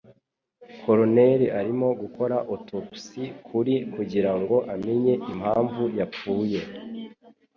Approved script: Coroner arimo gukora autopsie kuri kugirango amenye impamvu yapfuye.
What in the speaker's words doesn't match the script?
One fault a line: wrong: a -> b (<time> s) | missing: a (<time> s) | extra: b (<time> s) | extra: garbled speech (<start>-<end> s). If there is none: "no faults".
no faults